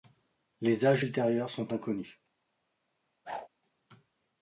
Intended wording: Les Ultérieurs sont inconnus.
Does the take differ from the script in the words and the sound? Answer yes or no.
yes